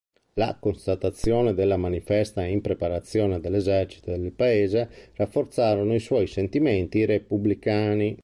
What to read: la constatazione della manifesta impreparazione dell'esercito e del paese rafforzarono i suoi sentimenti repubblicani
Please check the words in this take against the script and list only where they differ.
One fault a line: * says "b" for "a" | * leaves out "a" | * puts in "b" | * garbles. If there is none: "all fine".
all fine